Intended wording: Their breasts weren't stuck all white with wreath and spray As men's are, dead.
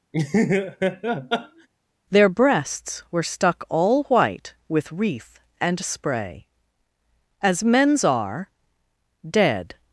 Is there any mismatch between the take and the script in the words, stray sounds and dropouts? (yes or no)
yes